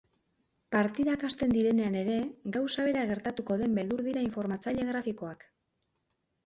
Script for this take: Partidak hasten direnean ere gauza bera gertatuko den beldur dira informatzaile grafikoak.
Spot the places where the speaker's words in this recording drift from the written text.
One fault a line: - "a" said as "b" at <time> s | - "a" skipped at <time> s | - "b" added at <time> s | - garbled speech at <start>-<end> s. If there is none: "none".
none